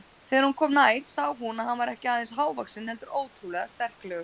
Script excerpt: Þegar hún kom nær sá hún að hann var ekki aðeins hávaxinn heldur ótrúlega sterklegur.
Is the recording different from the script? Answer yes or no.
no